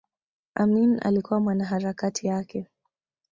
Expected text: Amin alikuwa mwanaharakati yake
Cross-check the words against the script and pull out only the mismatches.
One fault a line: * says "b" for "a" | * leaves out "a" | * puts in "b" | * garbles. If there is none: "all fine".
all fine